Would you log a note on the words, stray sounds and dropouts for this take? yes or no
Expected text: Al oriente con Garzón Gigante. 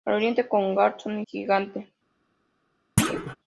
yes